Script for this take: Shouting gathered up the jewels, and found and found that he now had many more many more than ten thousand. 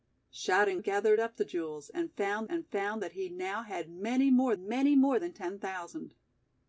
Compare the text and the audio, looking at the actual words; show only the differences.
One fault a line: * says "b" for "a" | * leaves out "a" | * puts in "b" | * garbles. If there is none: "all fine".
all fine